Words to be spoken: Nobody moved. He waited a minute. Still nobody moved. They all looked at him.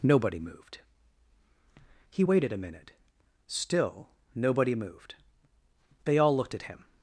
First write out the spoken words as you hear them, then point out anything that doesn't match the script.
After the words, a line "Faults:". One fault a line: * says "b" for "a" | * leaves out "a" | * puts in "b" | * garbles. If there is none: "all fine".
Nobody moved. He waited a minute. Still nobody moved. They all looked at him.
Faults:
all fine